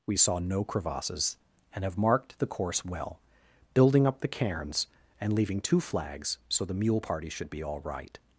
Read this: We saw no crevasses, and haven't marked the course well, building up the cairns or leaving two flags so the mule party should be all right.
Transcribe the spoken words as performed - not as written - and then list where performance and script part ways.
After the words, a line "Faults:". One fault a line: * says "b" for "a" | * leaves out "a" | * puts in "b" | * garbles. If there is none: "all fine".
We saw no crevasses, and have marked the course well, building up the cairns and leaving two flags so the mule party should be all right.
Faults:
* says "have" for "haven't"
* says "and" for "or"